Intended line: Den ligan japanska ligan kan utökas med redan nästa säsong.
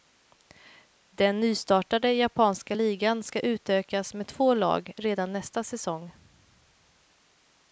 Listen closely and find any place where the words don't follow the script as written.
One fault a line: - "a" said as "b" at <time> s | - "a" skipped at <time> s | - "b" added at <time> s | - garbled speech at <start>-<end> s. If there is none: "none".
- "ligan" said as "nystartade" at 1.4 s
- "kan" said as "ska" at 3.2 s
- "två lag" added at 4.3 s